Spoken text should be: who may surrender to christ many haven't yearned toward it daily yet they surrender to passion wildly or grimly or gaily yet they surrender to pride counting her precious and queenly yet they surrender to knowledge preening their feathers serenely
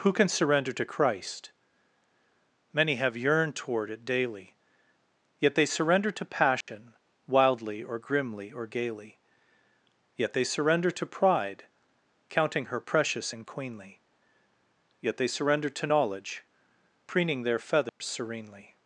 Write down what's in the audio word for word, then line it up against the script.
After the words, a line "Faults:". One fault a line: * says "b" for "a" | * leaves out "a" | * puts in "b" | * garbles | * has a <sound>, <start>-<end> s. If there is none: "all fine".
who can surrender to christ many have yearned toward it daily yet they surrender to passion wildly or grimly or gaily yet they surrender to pride counting her precious and queenly yet they surrender to knowledge preening their feathers serenely
Faults:
* says "can" for "may"
* says "have" for "haven't"
* has a dropout, 6.6-6.7 s
* has a dropout, 17.9-18.0 s